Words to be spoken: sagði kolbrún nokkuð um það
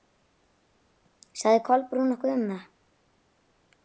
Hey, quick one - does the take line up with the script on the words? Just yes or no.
yes